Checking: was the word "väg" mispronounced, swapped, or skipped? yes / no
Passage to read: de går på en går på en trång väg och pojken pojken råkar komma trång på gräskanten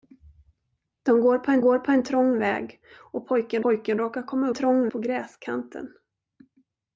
no